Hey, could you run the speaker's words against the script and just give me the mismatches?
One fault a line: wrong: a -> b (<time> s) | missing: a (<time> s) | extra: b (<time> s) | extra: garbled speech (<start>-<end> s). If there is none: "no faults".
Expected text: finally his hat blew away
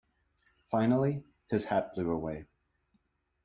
no faults